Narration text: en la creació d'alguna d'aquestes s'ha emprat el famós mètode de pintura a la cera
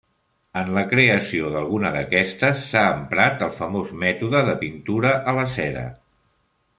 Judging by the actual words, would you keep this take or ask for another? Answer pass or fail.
pass